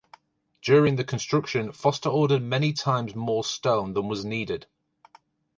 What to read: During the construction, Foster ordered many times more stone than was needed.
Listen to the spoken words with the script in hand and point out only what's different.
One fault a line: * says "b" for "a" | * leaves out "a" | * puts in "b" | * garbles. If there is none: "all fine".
all fine